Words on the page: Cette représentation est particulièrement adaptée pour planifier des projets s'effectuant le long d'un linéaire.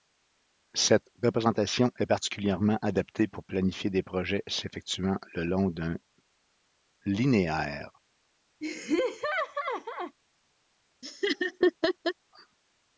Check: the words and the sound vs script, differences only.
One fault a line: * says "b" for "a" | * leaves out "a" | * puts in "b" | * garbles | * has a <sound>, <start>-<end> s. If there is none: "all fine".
* has a laugh, 8.6-10.2 s
* has a laugh, 11.0-12.1 s